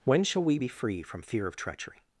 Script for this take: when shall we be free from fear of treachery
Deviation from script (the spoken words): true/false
false